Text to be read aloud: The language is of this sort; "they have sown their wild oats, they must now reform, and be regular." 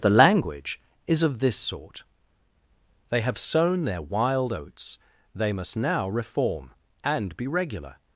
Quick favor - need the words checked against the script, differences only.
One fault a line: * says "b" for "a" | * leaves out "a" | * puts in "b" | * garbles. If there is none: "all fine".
all fine